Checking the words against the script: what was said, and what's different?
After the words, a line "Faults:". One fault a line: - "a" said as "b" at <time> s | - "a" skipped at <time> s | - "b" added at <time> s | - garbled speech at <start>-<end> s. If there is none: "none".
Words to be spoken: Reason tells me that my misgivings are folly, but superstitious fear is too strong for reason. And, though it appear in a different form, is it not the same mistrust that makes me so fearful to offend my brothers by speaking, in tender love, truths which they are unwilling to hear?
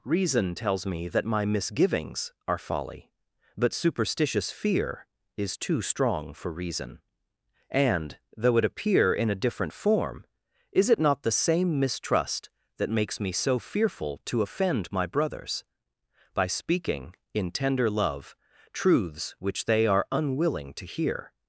Reason tells me that my misgivings are folly, but superstitious fear is too strong for reason. And, though it appear in a different form, is it not the same mistrust that makes me so fearful to offend my brothers by speaking, in tender love, truths which they are unwilling to hear?
Faults:
none